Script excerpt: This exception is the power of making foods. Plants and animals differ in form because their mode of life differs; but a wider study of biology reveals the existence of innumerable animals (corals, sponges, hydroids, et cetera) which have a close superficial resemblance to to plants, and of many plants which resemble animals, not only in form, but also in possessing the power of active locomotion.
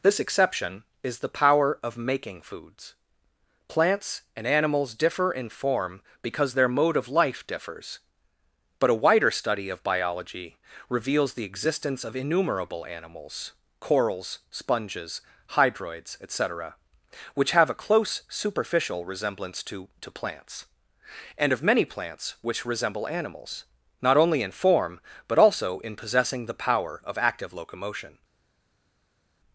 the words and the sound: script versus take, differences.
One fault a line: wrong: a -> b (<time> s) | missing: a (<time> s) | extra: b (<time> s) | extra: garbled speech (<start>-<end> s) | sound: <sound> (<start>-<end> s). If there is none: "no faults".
no faults